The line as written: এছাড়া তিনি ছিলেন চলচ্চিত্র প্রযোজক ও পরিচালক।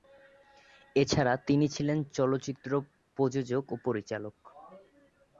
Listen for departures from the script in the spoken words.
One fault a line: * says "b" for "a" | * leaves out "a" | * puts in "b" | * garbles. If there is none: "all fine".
all fine